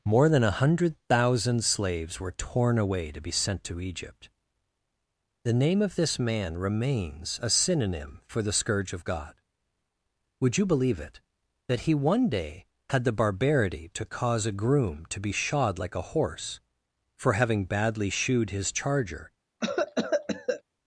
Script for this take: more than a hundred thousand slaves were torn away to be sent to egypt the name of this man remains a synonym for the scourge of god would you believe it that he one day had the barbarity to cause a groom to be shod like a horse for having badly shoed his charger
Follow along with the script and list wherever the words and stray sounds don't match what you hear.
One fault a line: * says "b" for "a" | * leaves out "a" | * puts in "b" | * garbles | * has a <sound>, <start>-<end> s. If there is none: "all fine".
* has a cough, 19.6-20.6 s